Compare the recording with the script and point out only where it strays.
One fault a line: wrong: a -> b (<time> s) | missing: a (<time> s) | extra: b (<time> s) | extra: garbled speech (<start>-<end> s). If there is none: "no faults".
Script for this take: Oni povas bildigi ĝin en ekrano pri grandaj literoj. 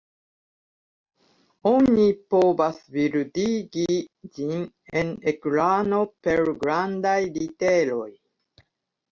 wrong: pri -> per (6.3 s)